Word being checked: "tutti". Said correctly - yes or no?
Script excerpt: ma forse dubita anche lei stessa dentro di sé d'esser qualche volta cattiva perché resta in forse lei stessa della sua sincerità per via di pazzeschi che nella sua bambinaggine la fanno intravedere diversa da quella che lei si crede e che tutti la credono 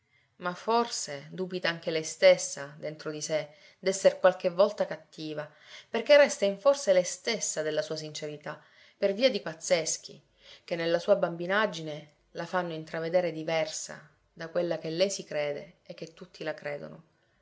yes